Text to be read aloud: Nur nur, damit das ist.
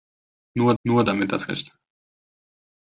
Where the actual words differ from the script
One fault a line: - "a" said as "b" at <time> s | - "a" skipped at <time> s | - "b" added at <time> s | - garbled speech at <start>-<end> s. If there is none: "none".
none